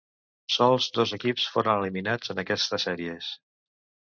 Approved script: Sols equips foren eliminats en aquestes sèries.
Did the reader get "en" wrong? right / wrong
right